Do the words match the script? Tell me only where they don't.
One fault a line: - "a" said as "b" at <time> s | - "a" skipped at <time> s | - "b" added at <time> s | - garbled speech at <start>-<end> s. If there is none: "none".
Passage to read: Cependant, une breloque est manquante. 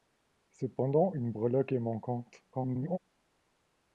- garbled speech at 2.5-3.0 s